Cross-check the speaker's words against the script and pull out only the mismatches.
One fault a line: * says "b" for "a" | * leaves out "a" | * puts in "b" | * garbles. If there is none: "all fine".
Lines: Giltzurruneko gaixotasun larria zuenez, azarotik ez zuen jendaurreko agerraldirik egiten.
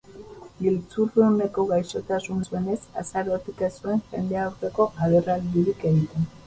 * leaves out "larria"